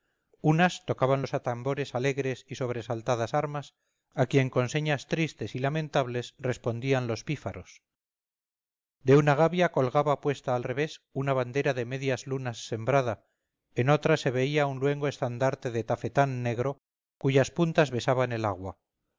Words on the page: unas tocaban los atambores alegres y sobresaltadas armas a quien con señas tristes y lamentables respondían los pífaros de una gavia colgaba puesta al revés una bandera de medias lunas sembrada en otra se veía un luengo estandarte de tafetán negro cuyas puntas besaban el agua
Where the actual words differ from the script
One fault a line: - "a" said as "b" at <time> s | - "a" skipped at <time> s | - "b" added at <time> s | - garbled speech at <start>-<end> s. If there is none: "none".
none